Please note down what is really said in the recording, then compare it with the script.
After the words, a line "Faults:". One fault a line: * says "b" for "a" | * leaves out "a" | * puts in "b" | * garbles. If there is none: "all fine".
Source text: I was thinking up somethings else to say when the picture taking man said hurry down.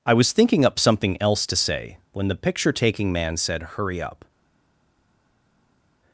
I was thinking up something else to say when the picture taking man said hurry up.
Faults:
* says "something" for "somethings"
* says "up" for "down"